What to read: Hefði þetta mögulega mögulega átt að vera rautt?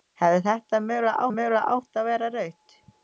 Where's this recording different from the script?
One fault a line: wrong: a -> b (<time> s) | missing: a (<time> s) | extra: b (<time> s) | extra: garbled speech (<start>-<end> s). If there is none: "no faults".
no faults